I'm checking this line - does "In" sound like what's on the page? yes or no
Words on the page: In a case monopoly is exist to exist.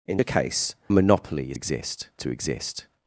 yes